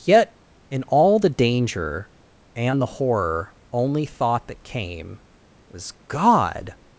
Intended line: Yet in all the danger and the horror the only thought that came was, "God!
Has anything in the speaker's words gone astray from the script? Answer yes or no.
yes